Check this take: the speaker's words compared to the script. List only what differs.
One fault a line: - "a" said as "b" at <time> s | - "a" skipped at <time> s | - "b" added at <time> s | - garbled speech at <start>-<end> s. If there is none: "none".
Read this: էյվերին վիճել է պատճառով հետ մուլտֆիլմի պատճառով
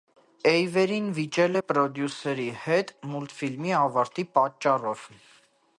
- "պատճառով" said as "պրոդյուսերի" at 1.7 s
- "ավարտի" added at 3.8 s